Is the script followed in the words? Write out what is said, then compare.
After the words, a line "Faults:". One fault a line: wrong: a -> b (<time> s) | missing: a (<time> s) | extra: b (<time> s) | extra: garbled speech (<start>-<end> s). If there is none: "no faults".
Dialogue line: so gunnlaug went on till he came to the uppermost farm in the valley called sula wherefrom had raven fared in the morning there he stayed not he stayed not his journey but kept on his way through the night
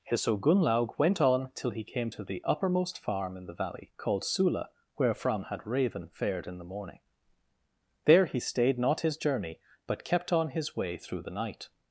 so gunnlaug went on till he came to the uppermost farm in the valley called sula wherefrom had raven fared in the morning there he stayed not his journey but kept on his way through the night
Faults:
missing: he stayed not (9.0 s)